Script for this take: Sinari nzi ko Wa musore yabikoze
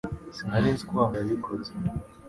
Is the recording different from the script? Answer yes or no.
yes